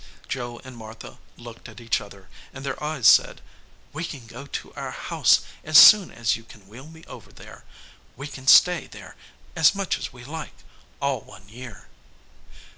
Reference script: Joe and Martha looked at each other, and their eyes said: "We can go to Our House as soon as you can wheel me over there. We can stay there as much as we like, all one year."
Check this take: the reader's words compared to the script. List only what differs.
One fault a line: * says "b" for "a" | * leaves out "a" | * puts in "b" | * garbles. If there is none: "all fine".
all fine